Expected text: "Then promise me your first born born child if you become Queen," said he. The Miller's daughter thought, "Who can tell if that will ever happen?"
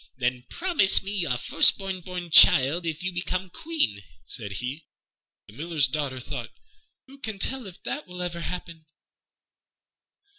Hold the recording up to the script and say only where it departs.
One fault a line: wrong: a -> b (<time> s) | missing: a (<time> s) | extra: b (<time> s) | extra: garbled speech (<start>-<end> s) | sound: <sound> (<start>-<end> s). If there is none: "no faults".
no faults